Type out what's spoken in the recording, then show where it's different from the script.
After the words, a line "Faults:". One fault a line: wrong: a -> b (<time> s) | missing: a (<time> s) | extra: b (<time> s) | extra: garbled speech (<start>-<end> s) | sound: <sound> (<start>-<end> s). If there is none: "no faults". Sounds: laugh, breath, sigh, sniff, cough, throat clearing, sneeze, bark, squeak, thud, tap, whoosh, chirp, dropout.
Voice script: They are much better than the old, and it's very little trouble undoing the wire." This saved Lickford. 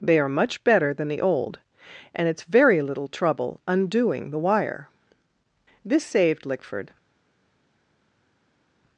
They are much better than the old, and it's very little trouble undoing the wire." This saved Lickford.
Faults:
no faults